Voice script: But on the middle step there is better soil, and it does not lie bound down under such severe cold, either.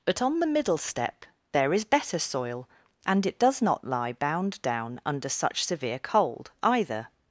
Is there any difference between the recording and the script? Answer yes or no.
no